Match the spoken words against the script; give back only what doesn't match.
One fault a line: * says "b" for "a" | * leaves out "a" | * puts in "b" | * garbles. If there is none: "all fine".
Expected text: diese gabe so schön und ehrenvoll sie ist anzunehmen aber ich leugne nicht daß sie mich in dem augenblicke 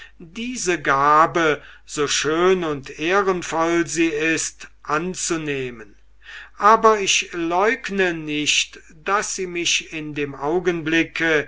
all fine